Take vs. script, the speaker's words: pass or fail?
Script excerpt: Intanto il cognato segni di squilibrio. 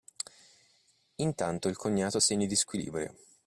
pass